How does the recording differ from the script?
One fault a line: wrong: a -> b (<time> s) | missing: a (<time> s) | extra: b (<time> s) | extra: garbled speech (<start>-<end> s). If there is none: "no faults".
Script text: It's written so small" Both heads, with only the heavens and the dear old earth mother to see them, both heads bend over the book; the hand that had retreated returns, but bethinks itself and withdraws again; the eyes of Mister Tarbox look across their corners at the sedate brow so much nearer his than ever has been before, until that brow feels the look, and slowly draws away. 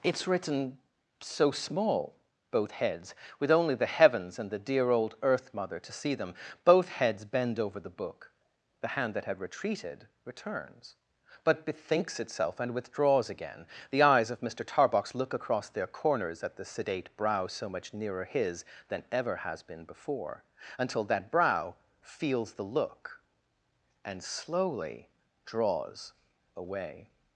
no faults